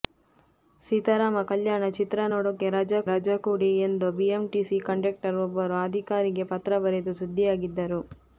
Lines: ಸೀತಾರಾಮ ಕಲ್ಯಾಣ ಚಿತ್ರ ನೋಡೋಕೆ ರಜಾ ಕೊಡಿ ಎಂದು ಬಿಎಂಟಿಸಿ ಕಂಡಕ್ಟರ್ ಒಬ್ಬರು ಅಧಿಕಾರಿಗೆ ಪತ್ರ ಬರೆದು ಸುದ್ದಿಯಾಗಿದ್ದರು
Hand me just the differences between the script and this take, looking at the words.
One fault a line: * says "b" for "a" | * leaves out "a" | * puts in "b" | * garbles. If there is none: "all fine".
* puts in "ರಜಾ"